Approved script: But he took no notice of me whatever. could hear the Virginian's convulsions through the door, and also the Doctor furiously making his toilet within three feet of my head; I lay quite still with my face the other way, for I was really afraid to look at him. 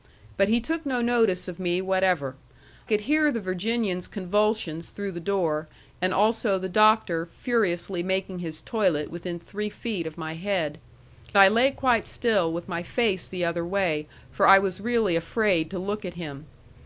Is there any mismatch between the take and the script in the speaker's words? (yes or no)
no